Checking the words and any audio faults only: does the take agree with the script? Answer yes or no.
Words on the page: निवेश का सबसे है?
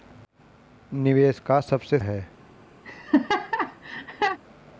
no